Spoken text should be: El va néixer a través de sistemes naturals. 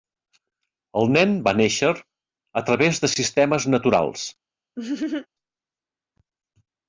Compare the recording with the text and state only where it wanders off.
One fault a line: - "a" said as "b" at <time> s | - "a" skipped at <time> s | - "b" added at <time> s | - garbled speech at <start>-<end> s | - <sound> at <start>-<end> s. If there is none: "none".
- "nen" added at 1.2 s
- laugh at 4.8-5.3 s